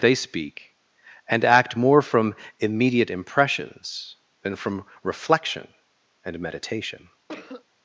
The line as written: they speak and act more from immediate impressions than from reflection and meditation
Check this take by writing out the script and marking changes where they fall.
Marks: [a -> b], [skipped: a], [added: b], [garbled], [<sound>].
they speak and act more from immediate impressions than from reflection and meditation [cough]